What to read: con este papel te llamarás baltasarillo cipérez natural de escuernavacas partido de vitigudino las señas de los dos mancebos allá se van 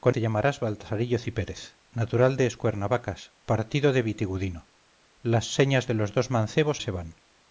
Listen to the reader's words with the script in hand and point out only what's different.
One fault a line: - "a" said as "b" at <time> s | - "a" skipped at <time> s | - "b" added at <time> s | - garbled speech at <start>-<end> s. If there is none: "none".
- "este papel" skipped at 0.1 s
- "allá" skipped at 6.8 s